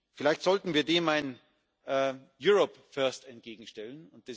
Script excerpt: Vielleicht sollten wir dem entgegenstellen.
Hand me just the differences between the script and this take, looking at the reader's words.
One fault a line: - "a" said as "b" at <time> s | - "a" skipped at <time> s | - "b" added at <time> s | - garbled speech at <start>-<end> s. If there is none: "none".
- "ein Europe First" added at 1.1 s